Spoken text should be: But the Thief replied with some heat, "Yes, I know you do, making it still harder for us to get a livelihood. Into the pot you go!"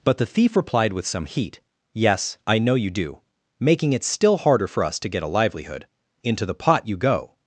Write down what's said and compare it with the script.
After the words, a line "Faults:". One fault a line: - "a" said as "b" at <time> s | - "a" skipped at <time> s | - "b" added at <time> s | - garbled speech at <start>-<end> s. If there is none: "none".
But the Thief replied with some heat, "Yes, I know you do, making it still harder for us to get a livelihood. Into the pot you go!"
Faults:
none